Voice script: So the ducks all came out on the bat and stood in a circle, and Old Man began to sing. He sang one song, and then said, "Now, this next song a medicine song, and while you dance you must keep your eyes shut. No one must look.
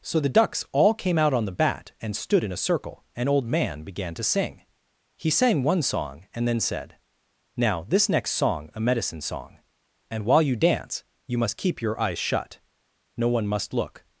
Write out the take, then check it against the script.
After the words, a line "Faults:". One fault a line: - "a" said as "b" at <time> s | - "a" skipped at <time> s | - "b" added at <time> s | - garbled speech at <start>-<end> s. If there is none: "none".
So the ducks all came out on the bat and stood in a circle, and Old Man began to sing. He sang one song, and then said, "Now, this next song a medicine song, and while you dance you must keep your eyes shut. No one must look.
Faults:
none